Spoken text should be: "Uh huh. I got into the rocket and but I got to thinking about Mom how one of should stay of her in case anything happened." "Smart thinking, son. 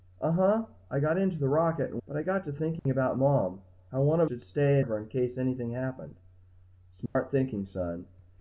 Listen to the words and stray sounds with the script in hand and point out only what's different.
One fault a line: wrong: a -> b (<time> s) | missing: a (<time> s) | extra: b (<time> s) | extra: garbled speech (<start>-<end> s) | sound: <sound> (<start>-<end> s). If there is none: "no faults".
sound: dropout (2.8-2.9 s)
sound: dropout (7.1-7.2 s)